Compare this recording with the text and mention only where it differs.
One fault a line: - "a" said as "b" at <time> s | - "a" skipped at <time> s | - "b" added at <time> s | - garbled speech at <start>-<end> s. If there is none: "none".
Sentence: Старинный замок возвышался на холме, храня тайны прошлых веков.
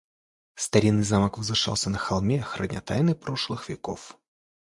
none